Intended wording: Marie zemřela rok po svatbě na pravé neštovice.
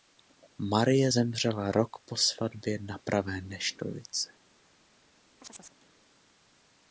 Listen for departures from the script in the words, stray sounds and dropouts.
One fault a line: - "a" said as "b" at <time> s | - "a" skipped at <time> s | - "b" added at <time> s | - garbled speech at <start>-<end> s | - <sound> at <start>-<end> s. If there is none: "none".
- chirp at 5.4-5.8 s